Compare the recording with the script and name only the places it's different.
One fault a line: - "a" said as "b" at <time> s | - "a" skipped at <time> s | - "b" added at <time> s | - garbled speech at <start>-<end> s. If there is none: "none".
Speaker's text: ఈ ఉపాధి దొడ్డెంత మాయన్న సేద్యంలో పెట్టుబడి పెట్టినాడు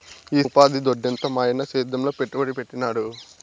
none